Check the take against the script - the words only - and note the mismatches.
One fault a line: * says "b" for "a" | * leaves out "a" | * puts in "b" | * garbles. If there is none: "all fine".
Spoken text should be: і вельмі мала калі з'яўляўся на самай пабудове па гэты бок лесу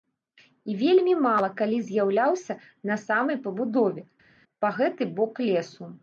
all fine